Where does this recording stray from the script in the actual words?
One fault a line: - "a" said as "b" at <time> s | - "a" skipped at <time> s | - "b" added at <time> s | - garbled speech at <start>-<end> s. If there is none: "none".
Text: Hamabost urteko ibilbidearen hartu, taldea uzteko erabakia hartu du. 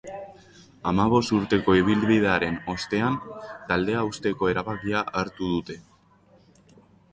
- "hartu" said as "ostean" at 2.8 s
- "du" said as "dute" at 5.5 s